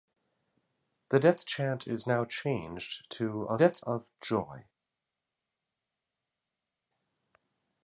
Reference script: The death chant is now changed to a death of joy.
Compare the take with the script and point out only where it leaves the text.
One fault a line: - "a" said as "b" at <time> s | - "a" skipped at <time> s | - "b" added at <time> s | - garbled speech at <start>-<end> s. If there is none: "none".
none